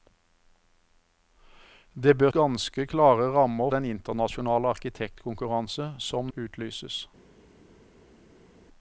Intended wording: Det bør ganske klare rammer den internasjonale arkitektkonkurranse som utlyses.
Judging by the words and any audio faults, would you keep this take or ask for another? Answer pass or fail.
pass